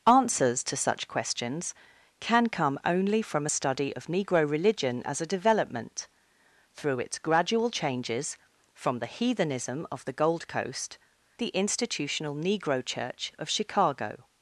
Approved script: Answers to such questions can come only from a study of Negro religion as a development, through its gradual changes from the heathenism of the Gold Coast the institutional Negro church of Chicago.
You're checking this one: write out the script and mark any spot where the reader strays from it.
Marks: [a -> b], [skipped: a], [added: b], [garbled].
Answers to such questions can come only from a study of Negro religion as a development, through its gradual changes from the heathenism of the Gold Coast the institutional Negro church of Chicago.